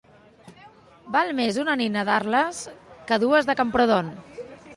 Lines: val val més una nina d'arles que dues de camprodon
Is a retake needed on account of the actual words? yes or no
yes